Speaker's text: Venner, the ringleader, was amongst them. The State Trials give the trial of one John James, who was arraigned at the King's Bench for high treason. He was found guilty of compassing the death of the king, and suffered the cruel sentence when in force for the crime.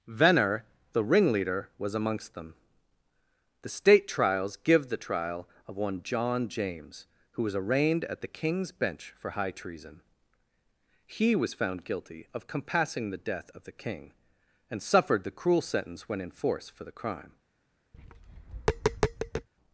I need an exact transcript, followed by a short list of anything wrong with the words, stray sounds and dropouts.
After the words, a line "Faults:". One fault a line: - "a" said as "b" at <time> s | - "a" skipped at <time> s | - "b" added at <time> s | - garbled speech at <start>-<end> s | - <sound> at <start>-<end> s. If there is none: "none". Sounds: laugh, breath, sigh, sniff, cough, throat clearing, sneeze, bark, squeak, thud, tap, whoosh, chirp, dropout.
Venner, the ringleader, was amongst them. The State Trials give the trial of one John James, who was arraigned at the King's Bench for high treason. He was found guilty of compassing the death of the king, and suffered the cruel sentence when in force for the crime.
Faults:
- tap at 17.9-19.5 s